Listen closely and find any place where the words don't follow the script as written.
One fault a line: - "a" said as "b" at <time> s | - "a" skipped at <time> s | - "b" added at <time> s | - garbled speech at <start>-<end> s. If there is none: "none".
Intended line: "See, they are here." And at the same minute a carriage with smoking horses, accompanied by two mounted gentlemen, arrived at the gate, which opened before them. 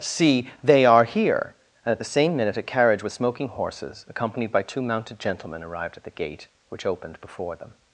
none